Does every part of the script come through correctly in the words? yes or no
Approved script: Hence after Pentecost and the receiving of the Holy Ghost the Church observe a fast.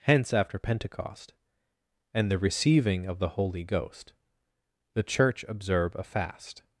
yes